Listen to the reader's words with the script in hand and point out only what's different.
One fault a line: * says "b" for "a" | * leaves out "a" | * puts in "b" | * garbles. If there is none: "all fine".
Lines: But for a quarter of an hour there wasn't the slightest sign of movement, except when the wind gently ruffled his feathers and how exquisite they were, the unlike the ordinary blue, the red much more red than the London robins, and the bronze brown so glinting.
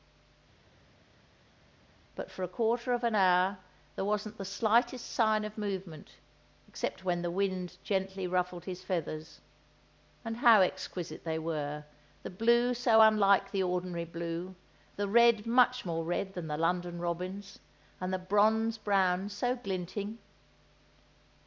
* puts in "blue so"